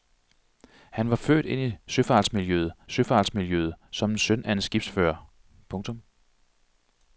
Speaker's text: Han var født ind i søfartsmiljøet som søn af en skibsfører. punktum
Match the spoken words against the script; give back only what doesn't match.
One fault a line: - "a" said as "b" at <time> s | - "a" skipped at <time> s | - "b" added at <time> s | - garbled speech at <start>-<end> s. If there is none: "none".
- "søfartsmiljøet" added at 2.9 s